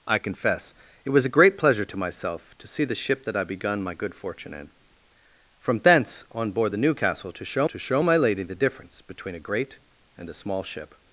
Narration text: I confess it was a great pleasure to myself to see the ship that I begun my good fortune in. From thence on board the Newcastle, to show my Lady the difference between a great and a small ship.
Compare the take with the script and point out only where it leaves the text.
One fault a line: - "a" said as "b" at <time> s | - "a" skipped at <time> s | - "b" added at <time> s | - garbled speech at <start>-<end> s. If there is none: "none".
- "to show" added at 7.6 s